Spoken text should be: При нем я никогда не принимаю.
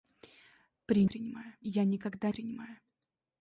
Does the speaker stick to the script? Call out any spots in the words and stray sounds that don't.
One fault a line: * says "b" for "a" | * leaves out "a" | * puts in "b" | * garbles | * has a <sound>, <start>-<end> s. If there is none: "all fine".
* says "принимаю" for "нем"
* leaves out "не"